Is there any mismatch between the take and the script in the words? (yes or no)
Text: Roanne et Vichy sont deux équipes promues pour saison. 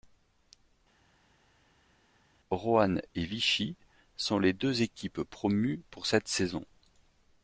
yes